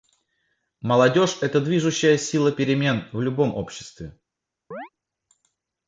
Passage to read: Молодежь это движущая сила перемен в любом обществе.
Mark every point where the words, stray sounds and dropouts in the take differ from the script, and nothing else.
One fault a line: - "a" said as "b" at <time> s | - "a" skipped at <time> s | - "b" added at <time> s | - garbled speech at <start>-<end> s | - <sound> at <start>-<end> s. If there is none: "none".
- chirp at 4.7-4.9 s